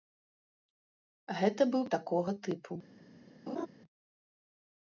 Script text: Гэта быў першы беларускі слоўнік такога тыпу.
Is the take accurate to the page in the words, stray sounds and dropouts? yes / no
no